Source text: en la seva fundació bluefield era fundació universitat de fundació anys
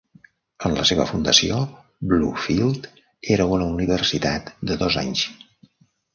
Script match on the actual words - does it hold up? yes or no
no